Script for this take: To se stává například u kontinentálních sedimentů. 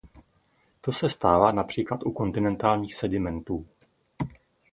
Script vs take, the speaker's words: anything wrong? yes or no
no